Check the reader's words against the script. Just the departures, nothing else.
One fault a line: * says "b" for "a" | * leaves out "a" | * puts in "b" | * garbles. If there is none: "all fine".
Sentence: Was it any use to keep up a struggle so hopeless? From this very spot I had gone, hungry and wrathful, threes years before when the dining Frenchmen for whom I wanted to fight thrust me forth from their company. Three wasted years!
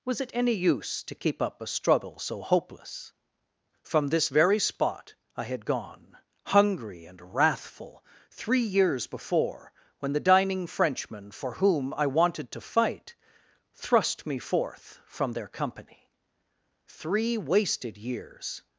* says "three" for "threes"